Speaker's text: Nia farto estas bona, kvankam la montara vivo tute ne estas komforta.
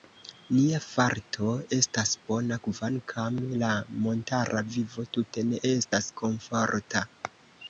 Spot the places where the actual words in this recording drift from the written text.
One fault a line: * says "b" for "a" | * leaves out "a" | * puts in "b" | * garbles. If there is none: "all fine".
all fine